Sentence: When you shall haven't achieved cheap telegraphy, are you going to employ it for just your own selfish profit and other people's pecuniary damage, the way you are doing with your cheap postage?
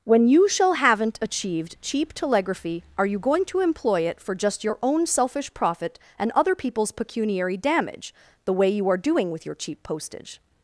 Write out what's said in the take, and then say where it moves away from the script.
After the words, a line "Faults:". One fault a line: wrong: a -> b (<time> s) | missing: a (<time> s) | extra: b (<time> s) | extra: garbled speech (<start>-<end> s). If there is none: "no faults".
When you shall haven't achieved cheap telegraphy, are you going to employ it for just your own selfish profit and other people's pecuniary damage, the way you are doing with your cheap postage?
Faults:
no faults